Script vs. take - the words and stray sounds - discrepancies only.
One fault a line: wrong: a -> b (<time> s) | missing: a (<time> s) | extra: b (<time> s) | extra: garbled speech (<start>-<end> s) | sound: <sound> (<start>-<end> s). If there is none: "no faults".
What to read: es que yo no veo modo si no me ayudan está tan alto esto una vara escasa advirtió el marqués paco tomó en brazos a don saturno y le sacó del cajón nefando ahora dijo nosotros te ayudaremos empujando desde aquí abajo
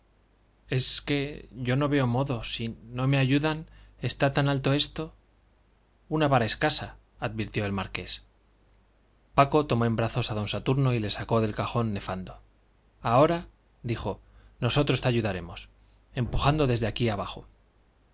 no faults